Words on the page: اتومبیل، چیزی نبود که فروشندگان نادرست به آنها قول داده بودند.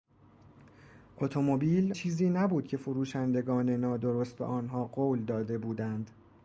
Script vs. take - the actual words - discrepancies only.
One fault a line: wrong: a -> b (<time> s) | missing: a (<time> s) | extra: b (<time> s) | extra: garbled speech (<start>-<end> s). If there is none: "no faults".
no faults